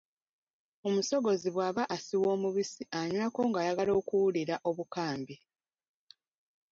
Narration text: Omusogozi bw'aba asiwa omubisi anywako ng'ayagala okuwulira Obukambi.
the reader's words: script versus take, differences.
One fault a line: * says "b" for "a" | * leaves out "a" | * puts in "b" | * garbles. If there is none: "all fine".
all fine